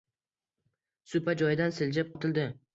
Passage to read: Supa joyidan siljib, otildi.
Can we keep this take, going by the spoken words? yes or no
yes